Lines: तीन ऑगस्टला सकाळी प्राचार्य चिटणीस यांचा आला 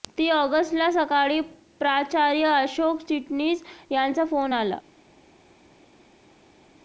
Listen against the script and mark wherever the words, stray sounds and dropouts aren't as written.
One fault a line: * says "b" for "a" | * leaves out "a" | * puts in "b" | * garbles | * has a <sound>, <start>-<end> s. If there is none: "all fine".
* puts in "अशोक"
* puts in "फोन"